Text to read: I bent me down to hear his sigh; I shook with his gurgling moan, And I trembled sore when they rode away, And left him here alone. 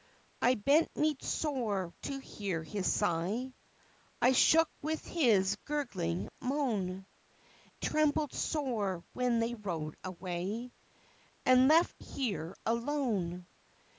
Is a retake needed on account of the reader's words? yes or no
yes